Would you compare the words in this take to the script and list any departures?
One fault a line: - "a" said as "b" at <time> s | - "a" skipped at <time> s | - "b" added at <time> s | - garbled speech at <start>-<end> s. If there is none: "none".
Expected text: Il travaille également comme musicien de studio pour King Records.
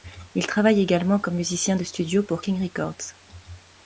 none